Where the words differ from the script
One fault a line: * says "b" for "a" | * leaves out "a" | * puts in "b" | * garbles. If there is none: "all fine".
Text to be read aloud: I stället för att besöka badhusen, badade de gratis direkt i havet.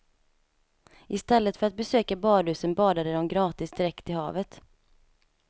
all fine